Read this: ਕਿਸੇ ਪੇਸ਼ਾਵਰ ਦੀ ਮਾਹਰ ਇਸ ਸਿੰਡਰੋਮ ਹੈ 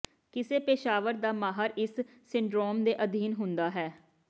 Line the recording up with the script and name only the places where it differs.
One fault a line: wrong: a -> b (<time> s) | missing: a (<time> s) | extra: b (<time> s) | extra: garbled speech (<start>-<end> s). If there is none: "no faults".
wrong: ਦੀ -> ਦਾ (1.1 s)
extra: ਦੇ ਅਧੀਨ ਹੁੰਦਾ (2.8 s)